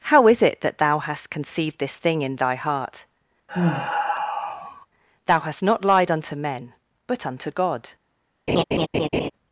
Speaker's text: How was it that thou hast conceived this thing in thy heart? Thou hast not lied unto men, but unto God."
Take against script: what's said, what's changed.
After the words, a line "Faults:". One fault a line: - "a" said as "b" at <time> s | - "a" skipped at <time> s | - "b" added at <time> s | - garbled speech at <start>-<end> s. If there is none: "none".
How is it that thou hast conceived this thing in thy heart? Thou hast not lied unto men, but unto God."
Faults:
- "was" said as "is" at 0.3 s